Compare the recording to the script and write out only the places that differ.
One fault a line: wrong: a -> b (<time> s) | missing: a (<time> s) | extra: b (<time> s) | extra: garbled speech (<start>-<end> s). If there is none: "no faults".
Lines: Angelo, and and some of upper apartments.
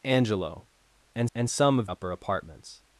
no faults